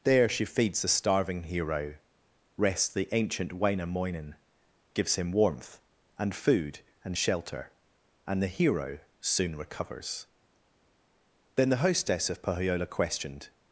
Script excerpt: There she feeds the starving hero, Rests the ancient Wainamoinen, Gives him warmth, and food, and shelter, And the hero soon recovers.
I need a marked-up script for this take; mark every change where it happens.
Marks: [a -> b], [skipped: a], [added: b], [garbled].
There she feeds the starving hero, Rests the ancient Wainamoinen, Gives him warmth, and food, and shelter, And the hero soon recovers. [added: Then the hostess of Pohyola Questioned]